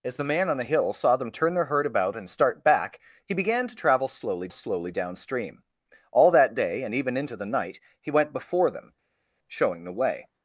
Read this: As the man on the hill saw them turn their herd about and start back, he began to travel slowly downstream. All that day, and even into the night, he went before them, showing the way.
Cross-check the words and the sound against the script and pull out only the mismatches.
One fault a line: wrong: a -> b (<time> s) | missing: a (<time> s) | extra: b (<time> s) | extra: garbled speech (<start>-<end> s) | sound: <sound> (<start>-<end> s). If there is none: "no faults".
extra: slowly (4.5 s)